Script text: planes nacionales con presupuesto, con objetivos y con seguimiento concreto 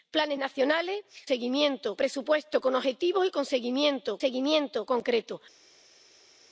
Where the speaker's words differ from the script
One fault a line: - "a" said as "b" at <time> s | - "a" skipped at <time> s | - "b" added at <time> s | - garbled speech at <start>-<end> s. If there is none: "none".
- "con" said as "seguimiento" at 1.2 s
- "seguimiento" added at 4.2 s